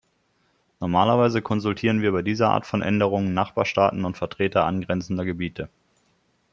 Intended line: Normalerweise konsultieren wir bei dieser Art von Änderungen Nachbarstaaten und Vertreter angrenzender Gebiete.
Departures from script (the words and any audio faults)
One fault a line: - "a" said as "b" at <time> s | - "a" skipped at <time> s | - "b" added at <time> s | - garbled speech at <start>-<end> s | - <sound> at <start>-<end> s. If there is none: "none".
none